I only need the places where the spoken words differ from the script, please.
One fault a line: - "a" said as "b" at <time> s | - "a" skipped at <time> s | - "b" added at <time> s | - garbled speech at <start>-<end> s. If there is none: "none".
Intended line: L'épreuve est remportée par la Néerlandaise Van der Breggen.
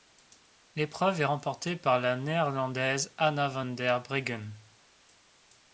- "Anna" added at 3.2 s